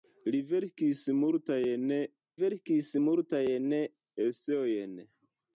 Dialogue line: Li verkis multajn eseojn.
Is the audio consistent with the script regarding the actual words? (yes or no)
no